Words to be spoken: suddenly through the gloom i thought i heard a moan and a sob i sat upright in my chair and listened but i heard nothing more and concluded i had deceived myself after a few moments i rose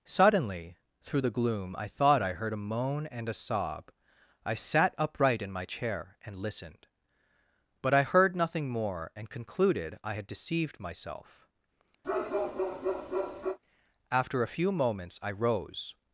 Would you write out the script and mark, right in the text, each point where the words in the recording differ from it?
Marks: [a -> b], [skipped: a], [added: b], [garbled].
suddenly through the gloom i thought i heard a moan and a sob i sat upright in my chair and listened but i heard nothing more and concluded i had deceived myself after a few moments i rose